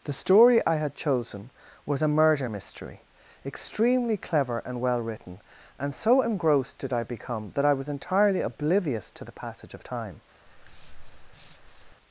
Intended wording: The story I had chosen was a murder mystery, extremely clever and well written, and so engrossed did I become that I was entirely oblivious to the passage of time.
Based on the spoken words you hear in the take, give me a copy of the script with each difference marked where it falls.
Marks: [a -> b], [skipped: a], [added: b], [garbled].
The story I had chosen was a murder mystery, extremely clever and well written, and so engrossed did I become that I was entirely oblivious to the passage of time.